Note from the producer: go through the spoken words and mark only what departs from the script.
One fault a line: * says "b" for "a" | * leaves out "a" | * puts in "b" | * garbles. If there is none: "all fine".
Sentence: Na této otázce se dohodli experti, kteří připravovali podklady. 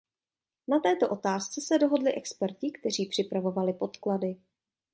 all fine